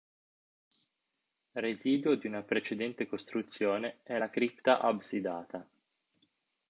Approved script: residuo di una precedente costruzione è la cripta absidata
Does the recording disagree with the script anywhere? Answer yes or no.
no